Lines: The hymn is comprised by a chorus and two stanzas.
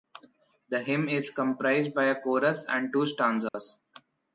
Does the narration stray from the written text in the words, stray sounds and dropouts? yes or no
yes